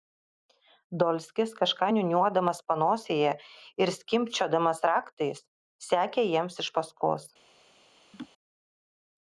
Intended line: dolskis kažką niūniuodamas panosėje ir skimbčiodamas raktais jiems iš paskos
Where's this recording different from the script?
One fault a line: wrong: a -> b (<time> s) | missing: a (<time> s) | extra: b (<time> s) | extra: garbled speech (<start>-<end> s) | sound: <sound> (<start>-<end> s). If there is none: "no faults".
extra: sekė (5.9 s)
sound: laugh (8.1-8.3 s)